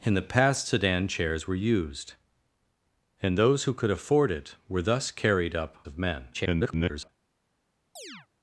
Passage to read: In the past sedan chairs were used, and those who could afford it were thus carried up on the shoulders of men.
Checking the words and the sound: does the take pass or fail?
fail